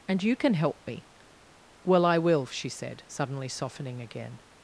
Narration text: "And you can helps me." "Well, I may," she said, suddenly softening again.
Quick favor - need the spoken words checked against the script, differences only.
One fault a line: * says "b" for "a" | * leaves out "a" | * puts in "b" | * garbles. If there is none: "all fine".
* says "help" for "helps"
* says "will" for "may"